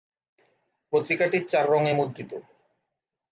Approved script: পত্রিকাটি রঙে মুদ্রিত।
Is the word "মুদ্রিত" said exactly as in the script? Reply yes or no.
yes